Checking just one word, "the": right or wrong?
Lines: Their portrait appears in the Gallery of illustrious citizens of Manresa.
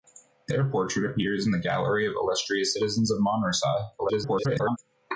right